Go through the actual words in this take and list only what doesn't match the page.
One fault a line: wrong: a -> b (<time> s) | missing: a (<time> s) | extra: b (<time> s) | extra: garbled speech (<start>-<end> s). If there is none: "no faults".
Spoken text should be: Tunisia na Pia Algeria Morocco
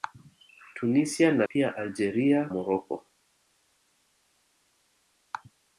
no faults